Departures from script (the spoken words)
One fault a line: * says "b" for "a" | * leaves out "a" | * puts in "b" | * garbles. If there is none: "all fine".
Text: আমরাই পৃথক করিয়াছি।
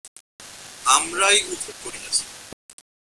all fine